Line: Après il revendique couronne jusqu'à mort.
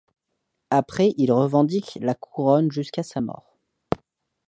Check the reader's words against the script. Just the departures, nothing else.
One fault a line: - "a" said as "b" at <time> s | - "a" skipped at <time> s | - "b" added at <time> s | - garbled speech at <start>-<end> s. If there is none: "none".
- "la" added at 2.0 s
- "sa" added at 3.0 s